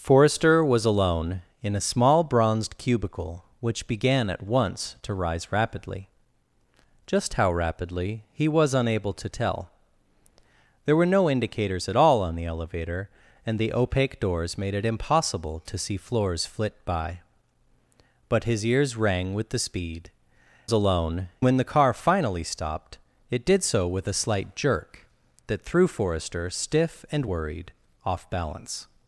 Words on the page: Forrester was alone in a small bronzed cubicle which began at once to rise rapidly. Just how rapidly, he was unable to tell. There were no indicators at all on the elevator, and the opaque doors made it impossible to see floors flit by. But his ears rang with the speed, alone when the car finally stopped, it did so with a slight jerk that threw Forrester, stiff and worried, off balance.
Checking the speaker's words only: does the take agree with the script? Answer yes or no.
yes